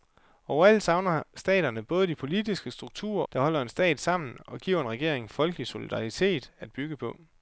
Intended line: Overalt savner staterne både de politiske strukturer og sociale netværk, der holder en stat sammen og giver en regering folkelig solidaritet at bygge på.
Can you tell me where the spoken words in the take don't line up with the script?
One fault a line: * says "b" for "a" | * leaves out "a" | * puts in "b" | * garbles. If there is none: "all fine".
* leaves out "og sociale netværk"